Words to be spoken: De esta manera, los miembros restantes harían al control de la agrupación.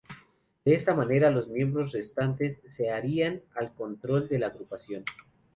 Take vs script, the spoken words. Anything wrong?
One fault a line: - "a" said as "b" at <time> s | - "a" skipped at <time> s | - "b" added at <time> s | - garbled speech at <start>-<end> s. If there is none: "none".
- "se" added at 2.6 s